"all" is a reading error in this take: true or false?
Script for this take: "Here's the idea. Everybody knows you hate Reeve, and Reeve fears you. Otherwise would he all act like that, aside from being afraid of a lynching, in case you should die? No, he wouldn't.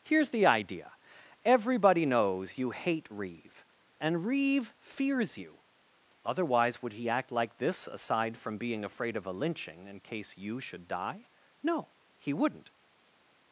true